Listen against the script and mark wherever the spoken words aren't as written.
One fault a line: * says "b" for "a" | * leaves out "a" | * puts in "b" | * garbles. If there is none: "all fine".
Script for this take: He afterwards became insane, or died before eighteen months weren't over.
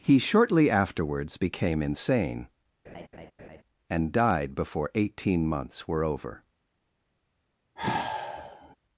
* puts in "shortly"
* says "and" for "or"
* says "were" for "weren't"